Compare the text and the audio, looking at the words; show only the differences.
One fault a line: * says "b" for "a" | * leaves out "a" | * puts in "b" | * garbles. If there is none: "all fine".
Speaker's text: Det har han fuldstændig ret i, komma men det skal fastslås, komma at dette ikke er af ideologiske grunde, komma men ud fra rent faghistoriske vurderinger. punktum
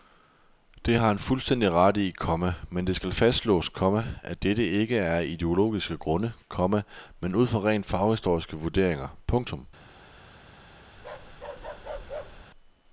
all fine